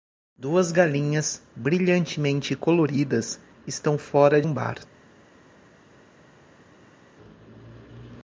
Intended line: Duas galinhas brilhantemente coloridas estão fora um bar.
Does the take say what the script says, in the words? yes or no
yes